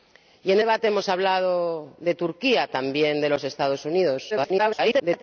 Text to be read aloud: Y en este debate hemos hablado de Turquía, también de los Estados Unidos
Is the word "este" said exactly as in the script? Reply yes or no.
no